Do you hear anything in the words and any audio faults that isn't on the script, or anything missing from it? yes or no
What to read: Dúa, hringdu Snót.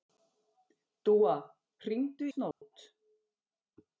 yes